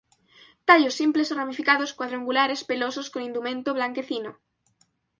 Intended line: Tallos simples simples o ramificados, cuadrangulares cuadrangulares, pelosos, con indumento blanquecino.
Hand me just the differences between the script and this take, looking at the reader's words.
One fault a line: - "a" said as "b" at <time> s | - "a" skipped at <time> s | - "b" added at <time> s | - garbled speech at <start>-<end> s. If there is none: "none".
- "simples" skipped at 1.3 s
- "cuadrangulares" skipped at 2.6 s